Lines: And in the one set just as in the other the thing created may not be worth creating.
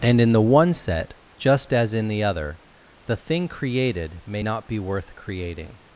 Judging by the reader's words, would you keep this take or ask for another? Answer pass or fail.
pass